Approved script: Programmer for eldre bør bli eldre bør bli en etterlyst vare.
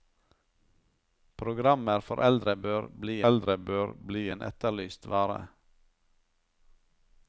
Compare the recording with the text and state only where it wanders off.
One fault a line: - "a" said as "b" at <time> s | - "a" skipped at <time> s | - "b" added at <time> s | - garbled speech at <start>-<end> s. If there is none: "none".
none